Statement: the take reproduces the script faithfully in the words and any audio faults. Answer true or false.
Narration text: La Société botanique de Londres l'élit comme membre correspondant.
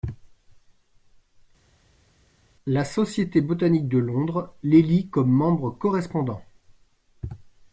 true